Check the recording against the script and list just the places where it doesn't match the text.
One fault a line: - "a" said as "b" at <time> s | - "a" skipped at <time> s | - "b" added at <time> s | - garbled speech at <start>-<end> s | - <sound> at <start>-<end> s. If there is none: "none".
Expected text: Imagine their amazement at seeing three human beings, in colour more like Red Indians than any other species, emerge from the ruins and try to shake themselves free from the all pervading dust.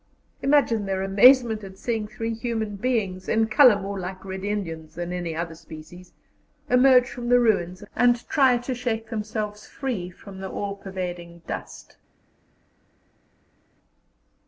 none